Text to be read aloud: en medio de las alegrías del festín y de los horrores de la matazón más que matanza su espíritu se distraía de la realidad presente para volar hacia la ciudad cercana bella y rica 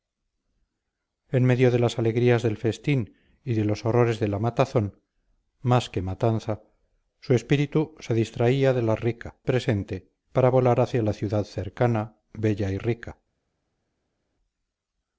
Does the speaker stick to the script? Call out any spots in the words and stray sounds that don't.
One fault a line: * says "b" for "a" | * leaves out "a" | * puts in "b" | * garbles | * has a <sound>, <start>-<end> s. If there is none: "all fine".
* says "rica" for "realidad"